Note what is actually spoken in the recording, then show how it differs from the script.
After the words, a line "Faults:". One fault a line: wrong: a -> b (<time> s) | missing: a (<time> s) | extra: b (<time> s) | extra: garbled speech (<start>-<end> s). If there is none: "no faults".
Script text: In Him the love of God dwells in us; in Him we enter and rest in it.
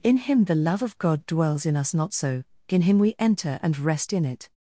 In Him the love of God dwells in us; not so in Him we enter and rest in it.
Faults:
extra: not so (1.9 s)